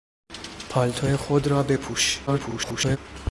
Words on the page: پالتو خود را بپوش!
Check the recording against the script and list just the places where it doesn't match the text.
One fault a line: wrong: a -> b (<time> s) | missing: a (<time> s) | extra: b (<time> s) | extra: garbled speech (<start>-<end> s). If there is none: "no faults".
extra: garbled speech (2.3-3.0 s)